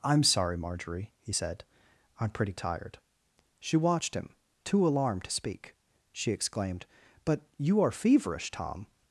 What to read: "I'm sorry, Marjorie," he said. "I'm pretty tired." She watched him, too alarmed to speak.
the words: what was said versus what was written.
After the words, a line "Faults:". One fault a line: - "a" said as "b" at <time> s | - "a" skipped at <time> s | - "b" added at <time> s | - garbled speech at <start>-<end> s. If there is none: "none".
"I'm sorry, Marjorie," he said. "I'm pretty tired." She watched him, too alarmed to speak. She exclaimed: "But you are feverish, Tom
Faults:
- "She exclaimed But you are feverish Tom" added at 6.1 s